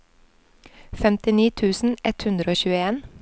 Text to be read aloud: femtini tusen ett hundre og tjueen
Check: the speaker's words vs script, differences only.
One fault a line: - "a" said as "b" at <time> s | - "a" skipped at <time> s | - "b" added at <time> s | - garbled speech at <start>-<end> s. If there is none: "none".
none